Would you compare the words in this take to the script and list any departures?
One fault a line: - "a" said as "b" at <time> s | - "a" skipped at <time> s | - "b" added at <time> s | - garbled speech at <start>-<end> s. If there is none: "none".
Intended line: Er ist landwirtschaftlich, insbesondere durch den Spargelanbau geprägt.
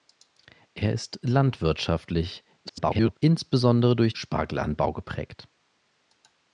- garbled speech at 2.6-3.2 s
- "den" skipped at 4.1 s